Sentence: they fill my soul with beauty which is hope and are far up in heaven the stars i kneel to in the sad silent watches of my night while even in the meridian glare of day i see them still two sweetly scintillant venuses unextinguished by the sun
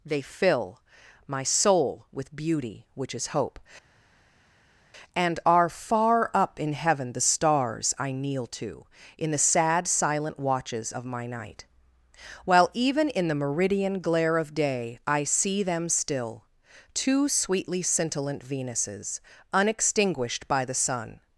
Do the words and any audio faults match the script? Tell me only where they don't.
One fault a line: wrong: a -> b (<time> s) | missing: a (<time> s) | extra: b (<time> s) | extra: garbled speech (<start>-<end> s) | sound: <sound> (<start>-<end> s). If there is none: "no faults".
no faults